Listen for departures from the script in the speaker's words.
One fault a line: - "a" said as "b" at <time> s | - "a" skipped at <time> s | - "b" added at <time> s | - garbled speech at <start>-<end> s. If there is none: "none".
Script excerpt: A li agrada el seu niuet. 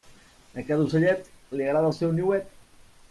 - "cada ocellet" added at 0.7 s